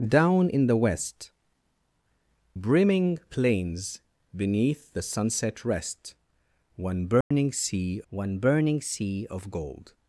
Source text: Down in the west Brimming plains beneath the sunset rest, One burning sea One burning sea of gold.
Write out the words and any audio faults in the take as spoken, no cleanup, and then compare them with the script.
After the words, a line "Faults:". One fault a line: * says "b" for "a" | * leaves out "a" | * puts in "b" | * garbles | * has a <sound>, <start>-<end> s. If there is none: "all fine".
Down in the west Brimming plains beneath the sunset rest, One burning sea One burning sea of gold.
Faults:
* has a dropout, 7.2-7.3 s